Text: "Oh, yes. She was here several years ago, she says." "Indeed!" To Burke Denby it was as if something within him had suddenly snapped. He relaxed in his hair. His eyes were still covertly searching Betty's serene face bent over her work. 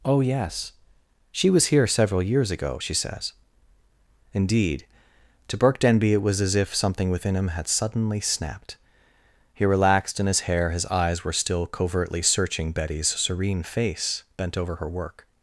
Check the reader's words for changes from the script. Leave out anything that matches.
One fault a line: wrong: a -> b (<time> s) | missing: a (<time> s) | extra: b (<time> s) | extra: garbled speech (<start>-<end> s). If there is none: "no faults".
no faults